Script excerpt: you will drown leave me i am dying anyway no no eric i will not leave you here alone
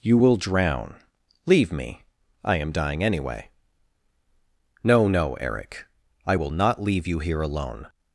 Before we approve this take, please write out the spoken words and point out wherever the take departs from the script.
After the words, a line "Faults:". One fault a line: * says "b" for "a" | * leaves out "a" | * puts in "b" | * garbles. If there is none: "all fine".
you will drown leave me i am dying anyway no no eric i will not leave you here alone
Faults:
all fine